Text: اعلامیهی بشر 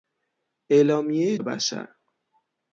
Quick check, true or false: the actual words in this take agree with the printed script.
true